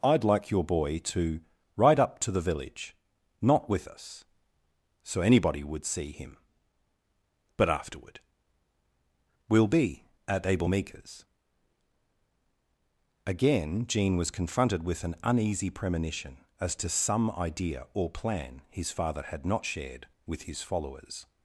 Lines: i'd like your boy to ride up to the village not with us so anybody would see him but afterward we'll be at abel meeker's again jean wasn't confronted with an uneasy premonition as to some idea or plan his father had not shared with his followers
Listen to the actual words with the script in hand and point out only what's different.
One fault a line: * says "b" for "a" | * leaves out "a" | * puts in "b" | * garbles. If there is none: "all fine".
* says "was" for "wasn't"